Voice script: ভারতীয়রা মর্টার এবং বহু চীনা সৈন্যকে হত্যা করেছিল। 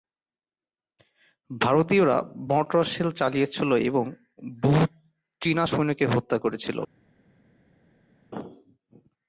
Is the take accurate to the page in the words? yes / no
no